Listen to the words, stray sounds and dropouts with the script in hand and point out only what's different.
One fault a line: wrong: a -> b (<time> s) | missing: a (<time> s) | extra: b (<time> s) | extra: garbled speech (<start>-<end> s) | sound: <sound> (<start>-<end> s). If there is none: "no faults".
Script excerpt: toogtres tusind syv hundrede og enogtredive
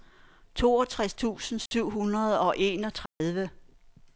sound: dropout (1.7-1.7 s)
sound: dropout (3.1-3.2 s)